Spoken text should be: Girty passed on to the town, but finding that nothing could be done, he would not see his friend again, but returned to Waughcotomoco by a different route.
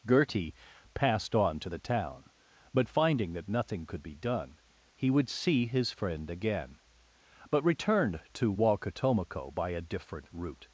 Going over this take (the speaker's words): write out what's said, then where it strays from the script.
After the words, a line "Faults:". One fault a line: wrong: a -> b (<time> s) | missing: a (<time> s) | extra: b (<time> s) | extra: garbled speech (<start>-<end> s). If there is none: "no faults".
Girty passed on to the town, but finding that nothing could be done, he would see his friend again, but returned to Waughcotomoco by a different route.
Faults:
missing: not (5.3 s)